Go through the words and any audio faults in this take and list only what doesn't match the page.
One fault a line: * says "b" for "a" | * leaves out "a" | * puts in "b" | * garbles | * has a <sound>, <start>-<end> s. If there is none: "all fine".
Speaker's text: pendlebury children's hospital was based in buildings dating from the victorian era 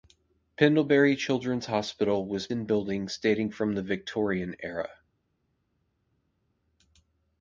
* leaves out "based"